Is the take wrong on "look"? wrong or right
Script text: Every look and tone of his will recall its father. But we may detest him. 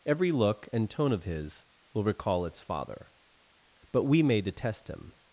right